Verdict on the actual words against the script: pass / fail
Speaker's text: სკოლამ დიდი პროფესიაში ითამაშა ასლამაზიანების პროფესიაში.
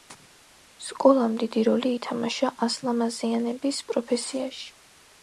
fail